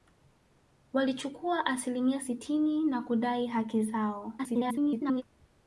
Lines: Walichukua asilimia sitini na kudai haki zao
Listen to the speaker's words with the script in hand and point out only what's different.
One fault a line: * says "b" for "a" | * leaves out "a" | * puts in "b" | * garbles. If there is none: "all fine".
* garbles